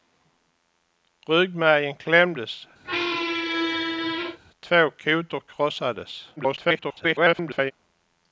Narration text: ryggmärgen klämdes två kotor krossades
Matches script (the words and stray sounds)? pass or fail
fail